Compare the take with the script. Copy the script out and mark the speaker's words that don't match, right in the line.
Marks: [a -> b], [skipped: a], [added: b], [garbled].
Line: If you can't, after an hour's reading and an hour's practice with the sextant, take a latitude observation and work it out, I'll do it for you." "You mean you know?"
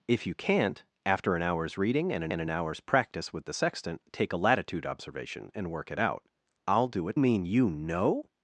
If you can't, after an hour's reading and an [added: and an] hour's practice with the sextant, take a latitude observation and work it out, I'll do it [skipped: for you." "You] mean you know?"